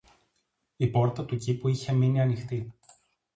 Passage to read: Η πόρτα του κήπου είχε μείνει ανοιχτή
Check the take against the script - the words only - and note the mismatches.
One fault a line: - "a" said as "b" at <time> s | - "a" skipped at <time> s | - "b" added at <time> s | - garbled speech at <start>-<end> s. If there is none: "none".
none